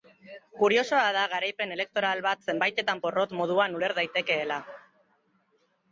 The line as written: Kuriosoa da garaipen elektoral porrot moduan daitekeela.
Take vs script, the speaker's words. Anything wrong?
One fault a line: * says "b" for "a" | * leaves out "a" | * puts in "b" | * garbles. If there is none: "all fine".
* puts in "bat zenbaitetan"
* puts in "uler"